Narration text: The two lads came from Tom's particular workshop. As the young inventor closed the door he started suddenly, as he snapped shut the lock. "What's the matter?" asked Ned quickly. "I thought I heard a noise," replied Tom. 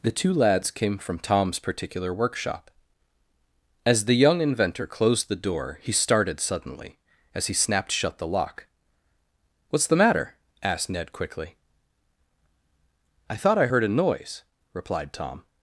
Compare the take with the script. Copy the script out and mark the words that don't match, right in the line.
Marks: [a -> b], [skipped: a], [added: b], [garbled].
The two lads came from Tom's particular workshop. As the young inventor closed the door he started suddenly, as he snapped shut the lock. "What's the matter?" asked Ned quickly. "I thought I heard a noise," replied Tom.